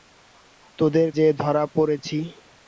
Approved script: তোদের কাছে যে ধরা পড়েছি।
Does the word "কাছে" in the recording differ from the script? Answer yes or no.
yes